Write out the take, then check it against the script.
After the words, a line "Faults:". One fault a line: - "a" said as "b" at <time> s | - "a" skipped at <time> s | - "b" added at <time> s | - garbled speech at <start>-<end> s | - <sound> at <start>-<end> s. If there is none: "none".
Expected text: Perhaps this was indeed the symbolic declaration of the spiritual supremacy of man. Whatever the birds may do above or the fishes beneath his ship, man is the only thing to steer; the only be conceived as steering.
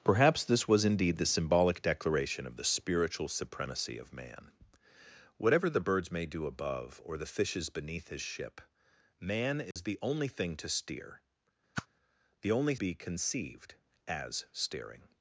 Perhaps this was indeed the symbolic declaration of the spiritual supremacy of man. Whatever the birds may do above or the fishes beneath his ship, man is the only thing to steer; the only be conceived as steering.
Faults:
- dropout at 9.7-9.8 s
- whoosh at 11.7-11.9 s